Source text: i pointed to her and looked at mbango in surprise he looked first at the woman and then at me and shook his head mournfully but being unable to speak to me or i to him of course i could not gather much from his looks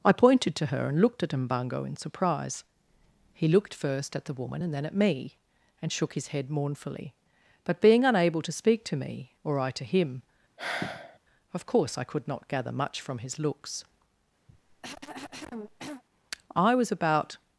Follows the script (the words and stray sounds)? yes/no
no